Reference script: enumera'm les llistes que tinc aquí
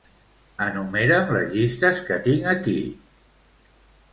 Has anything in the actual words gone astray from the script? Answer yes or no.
no